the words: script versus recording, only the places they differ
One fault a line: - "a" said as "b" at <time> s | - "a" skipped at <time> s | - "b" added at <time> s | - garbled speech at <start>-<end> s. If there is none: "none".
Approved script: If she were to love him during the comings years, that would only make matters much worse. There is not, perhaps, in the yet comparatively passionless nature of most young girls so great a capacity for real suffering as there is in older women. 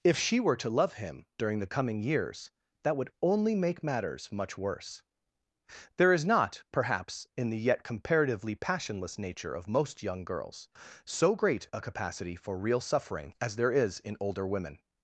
- "comings" said as "coming" at 1.7 s